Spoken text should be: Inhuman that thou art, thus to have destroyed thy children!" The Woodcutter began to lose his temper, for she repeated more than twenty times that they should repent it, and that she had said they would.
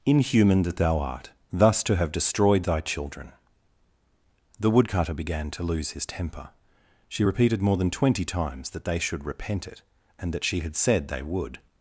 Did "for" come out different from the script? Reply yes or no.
yes